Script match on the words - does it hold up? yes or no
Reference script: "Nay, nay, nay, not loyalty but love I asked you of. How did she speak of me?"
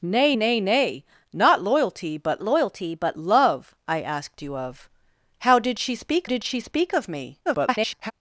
no